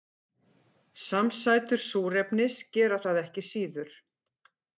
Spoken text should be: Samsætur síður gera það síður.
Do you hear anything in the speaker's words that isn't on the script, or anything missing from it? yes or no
yes